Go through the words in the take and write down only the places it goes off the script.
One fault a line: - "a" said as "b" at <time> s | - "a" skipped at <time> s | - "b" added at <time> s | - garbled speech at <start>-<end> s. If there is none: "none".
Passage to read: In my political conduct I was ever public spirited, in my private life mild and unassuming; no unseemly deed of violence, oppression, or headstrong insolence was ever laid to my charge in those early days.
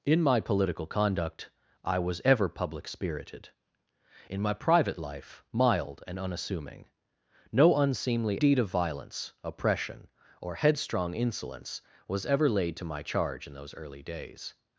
none